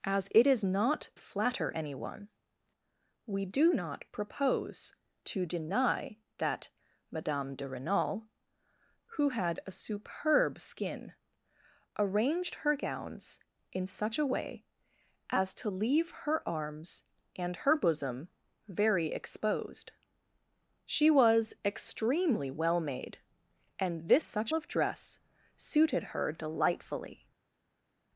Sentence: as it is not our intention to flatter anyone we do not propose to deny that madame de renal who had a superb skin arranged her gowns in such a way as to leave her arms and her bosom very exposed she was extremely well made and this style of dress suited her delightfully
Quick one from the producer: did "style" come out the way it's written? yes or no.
no